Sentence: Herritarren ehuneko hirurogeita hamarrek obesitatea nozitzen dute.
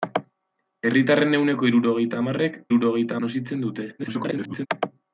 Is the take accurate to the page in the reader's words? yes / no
no